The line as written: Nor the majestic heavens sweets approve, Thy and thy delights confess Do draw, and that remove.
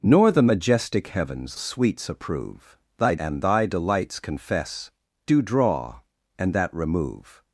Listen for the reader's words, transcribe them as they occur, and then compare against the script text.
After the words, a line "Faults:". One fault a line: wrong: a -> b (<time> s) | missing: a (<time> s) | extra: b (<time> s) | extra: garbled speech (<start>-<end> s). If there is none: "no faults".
Nor the majestic heavens sweets approve, Thy and thy delights confess Do draw, and that remove.
Faults:
no faults